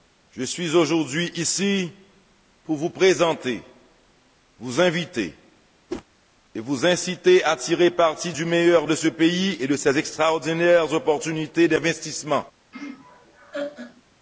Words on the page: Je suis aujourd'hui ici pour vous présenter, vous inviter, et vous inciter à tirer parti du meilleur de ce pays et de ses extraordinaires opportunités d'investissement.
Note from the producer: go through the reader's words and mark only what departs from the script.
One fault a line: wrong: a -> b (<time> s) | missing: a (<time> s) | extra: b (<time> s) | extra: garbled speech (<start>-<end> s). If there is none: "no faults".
no faults